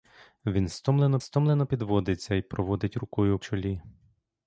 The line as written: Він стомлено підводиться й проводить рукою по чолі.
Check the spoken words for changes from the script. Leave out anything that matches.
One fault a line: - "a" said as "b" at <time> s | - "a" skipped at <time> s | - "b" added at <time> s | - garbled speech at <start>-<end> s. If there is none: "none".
- "стомлено" added at 1.2 s
- "по" skipped at 3.4 s